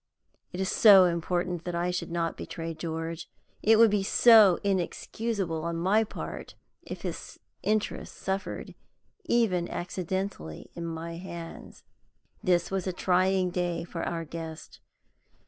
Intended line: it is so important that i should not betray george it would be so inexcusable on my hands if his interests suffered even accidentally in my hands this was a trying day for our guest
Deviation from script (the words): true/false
true